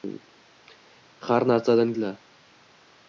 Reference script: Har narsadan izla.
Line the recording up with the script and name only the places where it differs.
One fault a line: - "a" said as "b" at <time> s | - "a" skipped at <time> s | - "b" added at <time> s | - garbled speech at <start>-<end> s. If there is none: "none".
none